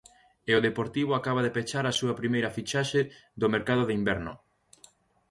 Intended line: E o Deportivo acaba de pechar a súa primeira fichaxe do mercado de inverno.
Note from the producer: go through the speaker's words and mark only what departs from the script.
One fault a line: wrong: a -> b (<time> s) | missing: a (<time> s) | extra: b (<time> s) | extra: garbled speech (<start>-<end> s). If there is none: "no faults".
no faults